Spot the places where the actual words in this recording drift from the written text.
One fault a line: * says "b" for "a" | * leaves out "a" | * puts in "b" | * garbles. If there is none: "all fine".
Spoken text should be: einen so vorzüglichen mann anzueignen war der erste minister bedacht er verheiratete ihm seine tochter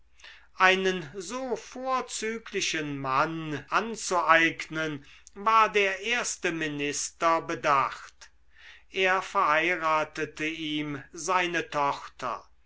all fine